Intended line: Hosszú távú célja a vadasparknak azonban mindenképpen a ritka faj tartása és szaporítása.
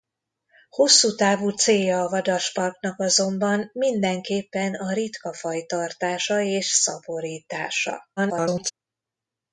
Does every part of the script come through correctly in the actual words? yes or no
no